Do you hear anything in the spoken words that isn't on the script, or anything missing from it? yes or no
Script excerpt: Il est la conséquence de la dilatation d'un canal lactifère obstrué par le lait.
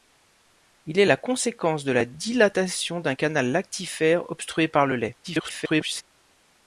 yes